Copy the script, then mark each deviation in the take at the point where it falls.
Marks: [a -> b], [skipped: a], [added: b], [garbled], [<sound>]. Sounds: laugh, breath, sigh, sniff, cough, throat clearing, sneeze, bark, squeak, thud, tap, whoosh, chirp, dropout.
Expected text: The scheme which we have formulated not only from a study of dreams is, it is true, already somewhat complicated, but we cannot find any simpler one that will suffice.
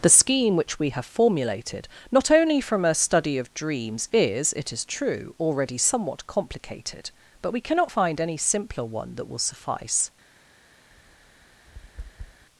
The scheme which we have formulated not only from a study of dreams is, it is true, already somewhat complicated, but we cannot find any simpler one that will suffice. [tap]